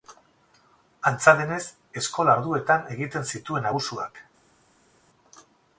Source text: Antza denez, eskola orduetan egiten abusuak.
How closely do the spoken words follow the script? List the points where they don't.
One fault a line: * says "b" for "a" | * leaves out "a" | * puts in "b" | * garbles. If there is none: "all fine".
* puts in "zituen"